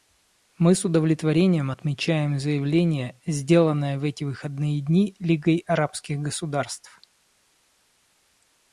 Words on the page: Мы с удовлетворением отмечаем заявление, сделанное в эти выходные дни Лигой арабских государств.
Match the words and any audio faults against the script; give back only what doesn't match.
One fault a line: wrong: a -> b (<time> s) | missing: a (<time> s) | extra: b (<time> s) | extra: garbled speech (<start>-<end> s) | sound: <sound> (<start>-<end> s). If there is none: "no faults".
no faults